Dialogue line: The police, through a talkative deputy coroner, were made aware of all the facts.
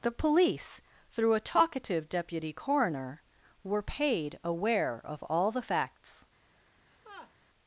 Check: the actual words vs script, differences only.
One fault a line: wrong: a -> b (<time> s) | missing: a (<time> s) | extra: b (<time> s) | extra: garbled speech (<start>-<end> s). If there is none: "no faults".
wrong: made -> paid (3.8 s)